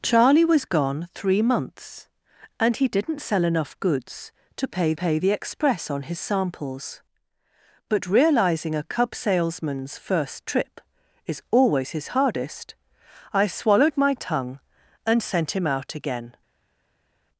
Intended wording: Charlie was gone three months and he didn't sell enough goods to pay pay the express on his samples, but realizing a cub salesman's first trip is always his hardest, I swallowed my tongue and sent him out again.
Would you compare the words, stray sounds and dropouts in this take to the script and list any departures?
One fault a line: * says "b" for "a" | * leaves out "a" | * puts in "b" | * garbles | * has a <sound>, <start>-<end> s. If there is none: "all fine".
all fine